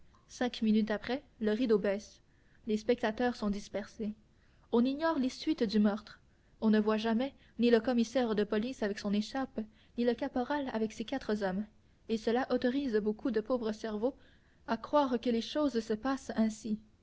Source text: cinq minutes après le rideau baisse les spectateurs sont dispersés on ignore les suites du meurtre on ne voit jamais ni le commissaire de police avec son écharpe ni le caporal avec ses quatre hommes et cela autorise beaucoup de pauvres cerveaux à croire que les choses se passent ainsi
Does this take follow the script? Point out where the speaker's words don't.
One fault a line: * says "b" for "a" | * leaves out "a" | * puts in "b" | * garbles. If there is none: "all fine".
all fine